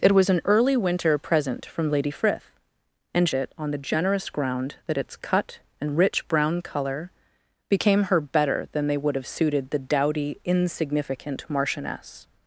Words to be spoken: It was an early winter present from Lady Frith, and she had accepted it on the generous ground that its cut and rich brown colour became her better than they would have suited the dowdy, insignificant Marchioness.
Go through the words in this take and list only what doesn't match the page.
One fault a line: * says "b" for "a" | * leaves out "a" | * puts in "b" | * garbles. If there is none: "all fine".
* leaves out "she had accepted"